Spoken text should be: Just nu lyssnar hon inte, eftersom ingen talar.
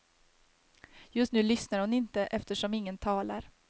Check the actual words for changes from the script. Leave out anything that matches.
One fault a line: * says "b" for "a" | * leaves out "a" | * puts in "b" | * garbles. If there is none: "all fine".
all fine